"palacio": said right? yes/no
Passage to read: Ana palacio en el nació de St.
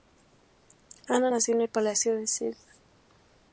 no